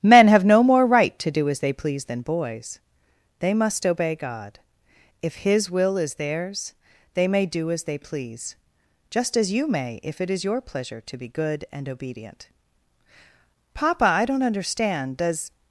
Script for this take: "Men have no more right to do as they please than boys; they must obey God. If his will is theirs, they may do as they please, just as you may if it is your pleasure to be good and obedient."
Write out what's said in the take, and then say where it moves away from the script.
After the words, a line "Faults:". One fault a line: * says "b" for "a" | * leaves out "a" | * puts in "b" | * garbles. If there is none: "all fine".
"Men have no more right to do as they please than boys; they must obey God. If his will is theirs, they may do as they please, just as you may if it is your pleasure to be good and obedient." "Papa, I don't understand. Does
Faults:
* puts in "Papa I don't understand Does"